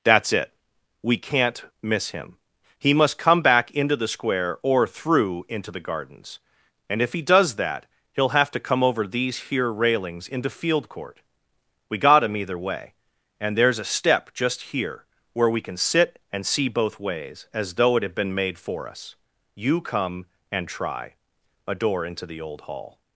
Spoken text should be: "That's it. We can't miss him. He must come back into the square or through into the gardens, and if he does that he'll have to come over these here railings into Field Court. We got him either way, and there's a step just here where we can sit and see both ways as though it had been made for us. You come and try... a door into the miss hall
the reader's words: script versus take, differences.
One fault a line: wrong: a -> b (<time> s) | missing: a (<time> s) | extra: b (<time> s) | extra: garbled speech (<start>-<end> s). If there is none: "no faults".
wrong: miss -> old (22.4 s)